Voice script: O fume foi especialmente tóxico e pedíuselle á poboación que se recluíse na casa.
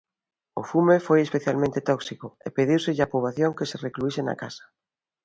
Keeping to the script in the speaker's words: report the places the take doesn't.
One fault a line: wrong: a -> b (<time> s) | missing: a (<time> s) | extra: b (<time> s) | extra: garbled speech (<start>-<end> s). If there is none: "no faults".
no faults